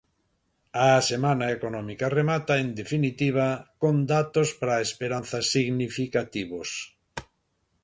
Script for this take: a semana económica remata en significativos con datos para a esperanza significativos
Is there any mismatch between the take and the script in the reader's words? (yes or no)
yes